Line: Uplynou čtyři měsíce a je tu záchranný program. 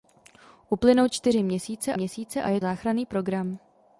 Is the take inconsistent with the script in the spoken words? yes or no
yes